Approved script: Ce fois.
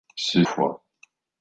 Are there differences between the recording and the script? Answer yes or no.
no